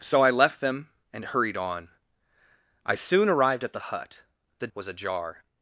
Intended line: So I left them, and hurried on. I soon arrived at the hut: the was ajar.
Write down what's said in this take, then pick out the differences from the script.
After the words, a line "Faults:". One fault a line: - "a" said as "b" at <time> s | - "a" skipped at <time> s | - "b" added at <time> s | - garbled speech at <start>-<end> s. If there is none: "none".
So I left them, and hurried on. I soon arrived at the hut: the was ajar.
Faults:
none